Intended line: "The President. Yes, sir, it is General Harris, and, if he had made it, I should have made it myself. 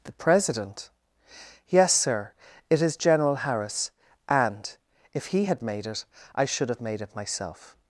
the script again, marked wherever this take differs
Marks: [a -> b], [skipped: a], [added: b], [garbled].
"The President. Yes, sir, it is General Harris, and, if he had made it, I should have made it myself.